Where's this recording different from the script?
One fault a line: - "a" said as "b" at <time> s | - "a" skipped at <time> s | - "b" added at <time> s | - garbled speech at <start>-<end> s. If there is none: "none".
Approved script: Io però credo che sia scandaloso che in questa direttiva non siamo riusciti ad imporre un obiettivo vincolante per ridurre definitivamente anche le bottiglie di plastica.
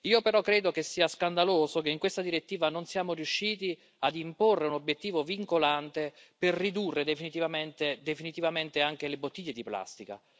none